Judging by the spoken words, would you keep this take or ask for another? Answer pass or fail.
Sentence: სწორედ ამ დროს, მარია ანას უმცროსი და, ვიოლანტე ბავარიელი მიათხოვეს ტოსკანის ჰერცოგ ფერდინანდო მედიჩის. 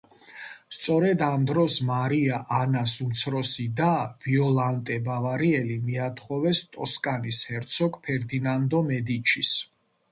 pass